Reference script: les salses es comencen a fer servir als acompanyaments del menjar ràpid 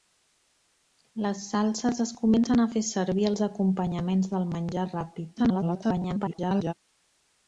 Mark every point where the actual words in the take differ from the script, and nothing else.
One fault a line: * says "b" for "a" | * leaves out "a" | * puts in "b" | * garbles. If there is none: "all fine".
* garbles